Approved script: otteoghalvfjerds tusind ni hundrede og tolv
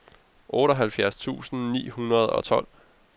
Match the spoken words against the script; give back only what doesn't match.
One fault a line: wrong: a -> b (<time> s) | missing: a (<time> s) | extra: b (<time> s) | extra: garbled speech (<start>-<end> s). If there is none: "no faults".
no faults